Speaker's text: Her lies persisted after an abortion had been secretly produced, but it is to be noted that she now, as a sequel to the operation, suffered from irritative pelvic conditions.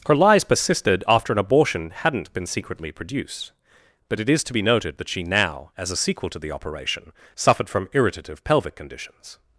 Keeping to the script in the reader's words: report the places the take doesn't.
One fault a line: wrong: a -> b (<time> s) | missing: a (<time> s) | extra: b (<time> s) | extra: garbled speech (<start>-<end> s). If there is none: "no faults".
wrong: had -> hadn't (1.9 s)